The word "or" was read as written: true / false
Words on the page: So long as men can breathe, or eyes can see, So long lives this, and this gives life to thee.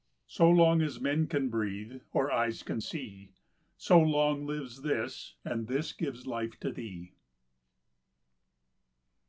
true